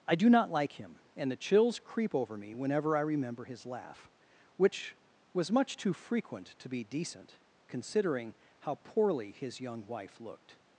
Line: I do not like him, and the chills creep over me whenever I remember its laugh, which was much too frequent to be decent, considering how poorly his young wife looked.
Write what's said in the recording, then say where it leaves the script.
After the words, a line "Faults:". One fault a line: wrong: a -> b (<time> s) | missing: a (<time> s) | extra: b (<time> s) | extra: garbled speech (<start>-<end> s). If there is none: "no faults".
I do not like him, and the chills creep over me whenever I remember his laugh, which was much too frequent to be decent, considering how poorly his young wife looked.
Faults:
wrong: its -> his (3.4 s)